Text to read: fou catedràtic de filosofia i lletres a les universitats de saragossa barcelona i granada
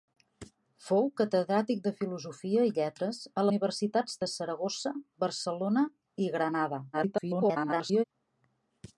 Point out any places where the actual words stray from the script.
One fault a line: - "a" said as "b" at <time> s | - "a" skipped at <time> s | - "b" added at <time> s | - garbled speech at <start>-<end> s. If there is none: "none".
- "les" skipped at 3.5 s
- garbled speech at 6.9-8.0 s